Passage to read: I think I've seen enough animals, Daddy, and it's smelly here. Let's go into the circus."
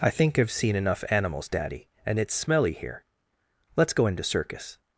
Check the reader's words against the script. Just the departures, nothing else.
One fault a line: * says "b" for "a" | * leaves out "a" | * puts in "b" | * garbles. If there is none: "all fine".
* leaves out "the"